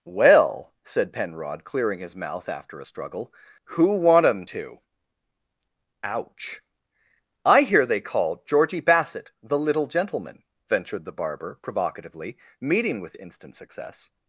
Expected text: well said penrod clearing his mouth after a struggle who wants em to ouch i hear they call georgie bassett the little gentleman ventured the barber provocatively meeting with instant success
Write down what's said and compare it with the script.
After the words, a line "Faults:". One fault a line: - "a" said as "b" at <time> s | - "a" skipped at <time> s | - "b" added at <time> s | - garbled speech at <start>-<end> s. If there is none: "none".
well said penrod clearing his mouth after a struggle who want em to ouch i hear they call georgie bassett the little gentleman ventured the barber provocatively meeting with instant success
Faults:
- "wants" said as "want" at 4.0 s